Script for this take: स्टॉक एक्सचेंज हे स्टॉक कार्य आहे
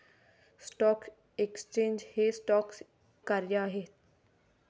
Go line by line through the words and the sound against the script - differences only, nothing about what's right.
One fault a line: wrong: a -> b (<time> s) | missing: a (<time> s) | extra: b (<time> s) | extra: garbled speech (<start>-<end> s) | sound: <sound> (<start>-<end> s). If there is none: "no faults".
no faults